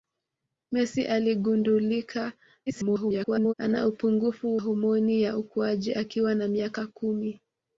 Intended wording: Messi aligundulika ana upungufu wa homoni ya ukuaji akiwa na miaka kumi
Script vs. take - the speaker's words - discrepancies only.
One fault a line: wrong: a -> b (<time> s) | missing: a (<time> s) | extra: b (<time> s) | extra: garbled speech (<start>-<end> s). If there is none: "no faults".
extra: garbled speech (2.7-3.5 s)
missing: wa (4.6 s)